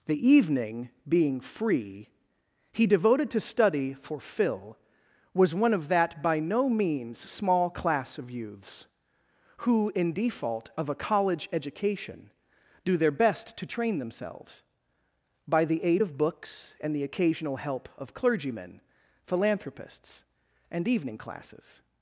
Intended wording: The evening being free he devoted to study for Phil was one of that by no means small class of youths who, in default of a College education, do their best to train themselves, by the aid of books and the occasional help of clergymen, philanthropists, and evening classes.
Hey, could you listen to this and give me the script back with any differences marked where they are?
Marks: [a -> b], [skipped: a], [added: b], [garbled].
The evening being free he devoted to study for Phil was one of that by no means small class of youths who, in default of a College education, do their best to train themselves, by the aid of books and the occasional help of clergymen, philanthropists, and evening classes.